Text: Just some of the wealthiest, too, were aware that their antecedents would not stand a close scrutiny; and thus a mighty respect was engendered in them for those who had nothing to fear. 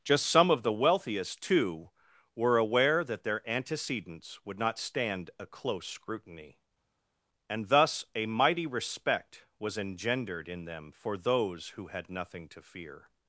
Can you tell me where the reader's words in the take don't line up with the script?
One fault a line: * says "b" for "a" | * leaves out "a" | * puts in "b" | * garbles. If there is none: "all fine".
all fine